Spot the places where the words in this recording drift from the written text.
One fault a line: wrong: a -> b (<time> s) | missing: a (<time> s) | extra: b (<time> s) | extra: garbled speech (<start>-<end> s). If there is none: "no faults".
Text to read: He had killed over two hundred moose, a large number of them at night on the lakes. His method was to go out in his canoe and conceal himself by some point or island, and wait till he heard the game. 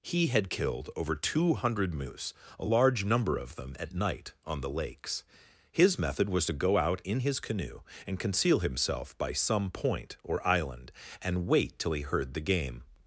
no faults